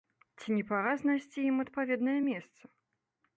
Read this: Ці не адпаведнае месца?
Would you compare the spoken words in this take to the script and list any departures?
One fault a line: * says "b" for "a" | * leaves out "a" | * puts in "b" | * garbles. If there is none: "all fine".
* puts in "пара знайсці ім"